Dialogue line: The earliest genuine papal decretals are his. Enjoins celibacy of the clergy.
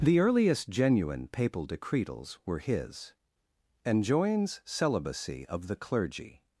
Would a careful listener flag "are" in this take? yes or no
yes